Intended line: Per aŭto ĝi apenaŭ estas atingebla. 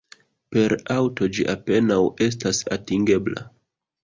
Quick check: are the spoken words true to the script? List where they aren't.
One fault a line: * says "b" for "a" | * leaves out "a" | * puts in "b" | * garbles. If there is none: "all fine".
all fine